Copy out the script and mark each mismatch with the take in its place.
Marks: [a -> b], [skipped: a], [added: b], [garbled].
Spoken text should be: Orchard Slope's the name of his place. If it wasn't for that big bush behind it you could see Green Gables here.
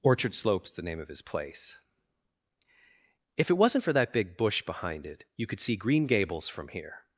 Orchard Slope's the name of his place. If it wasn't for that big bush behind it you could see Green Gables [added: from] here.